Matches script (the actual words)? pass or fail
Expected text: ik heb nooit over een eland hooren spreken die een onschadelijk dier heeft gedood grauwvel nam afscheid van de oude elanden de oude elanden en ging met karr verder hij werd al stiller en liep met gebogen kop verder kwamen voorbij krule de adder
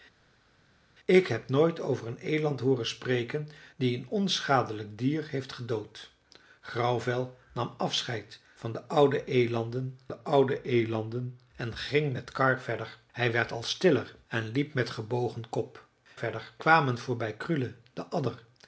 pass